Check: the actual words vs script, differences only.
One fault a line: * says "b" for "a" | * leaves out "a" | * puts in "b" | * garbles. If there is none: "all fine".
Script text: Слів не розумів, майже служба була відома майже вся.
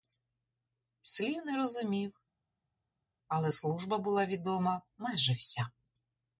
* says "але" for "майже"